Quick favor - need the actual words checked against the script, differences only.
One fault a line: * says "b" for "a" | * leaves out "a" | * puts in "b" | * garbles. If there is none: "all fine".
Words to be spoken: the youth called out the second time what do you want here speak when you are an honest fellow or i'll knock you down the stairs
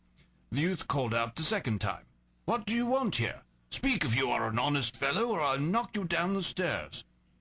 * says "if" for "when"